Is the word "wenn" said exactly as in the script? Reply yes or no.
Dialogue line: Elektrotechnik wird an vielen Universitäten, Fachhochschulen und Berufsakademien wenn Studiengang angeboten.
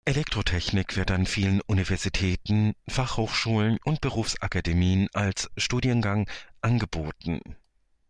no